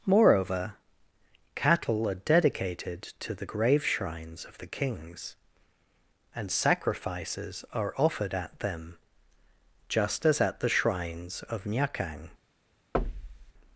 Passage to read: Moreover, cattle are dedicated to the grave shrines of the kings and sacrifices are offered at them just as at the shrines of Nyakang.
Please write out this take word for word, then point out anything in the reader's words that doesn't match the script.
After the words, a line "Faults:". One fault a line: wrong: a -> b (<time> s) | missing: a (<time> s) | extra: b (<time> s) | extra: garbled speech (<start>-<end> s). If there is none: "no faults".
Moreover, cattle are dedicated to the grave shrines of the kings and sacrifices are offered at them just as at the shrines of Nyakang.
Faults:
no faults